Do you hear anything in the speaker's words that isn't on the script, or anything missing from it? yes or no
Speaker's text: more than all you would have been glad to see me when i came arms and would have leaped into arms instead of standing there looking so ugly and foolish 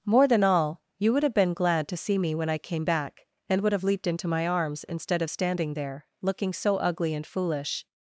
yes